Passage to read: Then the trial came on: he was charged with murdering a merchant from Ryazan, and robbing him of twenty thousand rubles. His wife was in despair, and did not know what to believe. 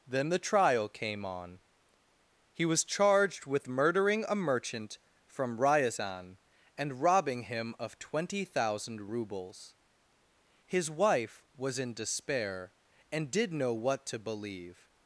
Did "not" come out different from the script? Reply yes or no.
yes